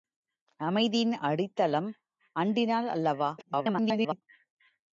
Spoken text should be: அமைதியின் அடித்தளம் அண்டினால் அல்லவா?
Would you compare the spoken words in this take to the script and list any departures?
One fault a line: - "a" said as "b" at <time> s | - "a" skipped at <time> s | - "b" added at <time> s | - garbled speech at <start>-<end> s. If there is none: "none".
- garbled speech at 3.4-4.2 s